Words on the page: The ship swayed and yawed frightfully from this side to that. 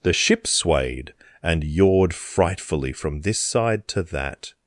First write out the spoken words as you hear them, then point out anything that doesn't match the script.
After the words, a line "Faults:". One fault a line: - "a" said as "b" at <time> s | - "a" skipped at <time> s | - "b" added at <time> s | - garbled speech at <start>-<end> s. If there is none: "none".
The ship swayed and yawed frightfully from this side to that.
Faults:
none